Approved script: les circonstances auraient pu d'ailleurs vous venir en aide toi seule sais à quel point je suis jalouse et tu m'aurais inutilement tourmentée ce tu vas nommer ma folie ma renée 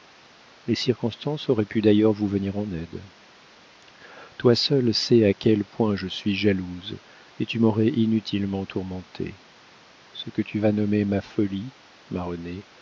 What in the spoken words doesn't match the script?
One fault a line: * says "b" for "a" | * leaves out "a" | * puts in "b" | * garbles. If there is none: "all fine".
* puts in "que"